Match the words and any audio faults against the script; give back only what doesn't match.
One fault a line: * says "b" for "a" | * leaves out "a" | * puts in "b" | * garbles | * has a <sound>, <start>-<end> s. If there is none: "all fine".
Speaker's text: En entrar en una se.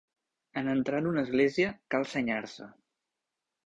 * puts in "església cal senyar"